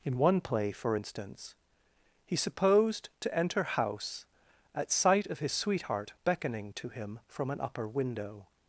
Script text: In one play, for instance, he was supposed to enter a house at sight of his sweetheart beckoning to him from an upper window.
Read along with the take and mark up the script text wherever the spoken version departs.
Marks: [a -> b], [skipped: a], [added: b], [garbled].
In one play, for instance, he [skipped: was] supposed to enter [skipped: a] house at sight of his sweetheart beckoning to him from an upper window.